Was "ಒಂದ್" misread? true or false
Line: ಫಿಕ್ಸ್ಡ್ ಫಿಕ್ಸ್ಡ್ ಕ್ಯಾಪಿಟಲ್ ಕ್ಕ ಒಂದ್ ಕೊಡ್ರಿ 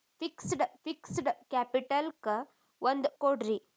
false